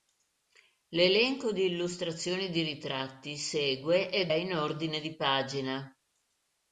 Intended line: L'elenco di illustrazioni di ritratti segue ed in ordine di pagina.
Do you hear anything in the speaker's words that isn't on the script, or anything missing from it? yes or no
no